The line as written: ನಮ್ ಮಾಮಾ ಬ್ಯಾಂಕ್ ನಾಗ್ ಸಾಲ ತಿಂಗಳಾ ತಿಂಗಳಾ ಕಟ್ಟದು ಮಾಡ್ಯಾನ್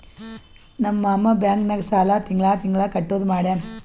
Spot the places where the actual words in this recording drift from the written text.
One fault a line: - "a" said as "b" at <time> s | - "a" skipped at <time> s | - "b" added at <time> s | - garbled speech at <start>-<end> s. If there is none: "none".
none